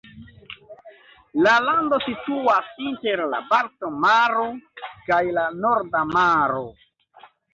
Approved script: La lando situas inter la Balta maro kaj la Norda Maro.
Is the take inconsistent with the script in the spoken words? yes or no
no